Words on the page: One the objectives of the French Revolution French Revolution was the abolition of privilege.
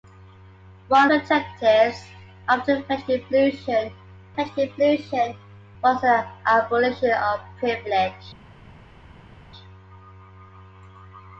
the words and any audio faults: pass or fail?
pass